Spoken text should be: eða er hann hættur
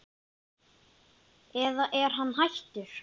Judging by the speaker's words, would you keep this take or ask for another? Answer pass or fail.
pass